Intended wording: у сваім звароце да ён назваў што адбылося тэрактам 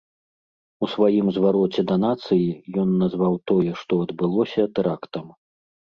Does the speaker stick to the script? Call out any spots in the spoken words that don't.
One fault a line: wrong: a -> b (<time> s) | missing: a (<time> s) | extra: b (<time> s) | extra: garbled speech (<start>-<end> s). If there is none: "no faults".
extra: нацыі (2.0 s)
extra: тое (3.5 s)